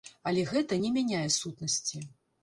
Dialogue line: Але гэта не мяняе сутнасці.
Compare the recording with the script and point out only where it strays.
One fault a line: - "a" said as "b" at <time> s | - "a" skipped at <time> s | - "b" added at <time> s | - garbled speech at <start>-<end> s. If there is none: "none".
none